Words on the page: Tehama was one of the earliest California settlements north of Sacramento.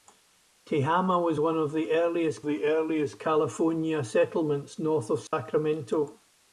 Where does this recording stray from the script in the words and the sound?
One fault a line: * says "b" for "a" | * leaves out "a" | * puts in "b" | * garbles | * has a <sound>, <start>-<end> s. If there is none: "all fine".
* puts in "the earliest"
* has a dropout, 5.3-5.3 s